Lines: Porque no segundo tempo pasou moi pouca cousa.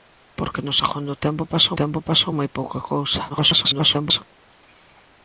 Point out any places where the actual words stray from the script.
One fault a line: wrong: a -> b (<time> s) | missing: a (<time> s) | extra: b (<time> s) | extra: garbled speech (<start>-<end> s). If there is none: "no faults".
extra: tempo pasou (1.8 s)
extra: garbled speech (3.3-4.2 s)